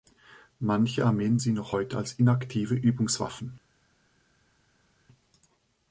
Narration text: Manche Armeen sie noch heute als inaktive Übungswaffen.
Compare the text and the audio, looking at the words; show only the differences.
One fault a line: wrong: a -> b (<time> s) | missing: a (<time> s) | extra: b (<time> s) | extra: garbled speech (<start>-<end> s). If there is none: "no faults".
no faults